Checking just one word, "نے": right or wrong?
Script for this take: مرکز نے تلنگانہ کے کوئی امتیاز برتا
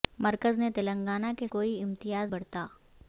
right